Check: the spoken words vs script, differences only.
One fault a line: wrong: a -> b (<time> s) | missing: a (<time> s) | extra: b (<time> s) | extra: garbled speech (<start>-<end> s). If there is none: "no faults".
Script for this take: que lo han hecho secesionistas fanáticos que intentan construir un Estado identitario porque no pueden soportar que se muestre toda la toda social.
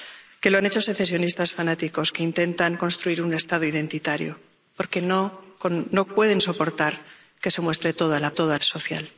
no faults